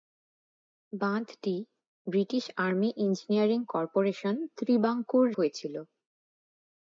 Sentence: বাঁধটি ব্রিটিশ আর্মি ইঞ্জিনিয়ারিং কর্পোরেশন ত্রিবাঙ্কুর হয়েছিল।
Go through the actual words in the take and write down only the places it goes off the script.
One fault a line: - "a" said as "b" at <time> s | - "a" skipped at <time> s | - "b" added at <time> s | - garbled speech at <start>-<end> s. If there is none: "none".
none